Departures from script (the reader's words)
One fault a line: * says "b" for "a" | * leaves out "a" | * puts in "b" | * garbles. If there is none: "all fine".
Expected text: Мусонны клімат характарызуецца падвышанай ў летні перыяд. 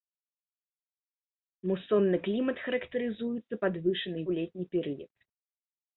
all fine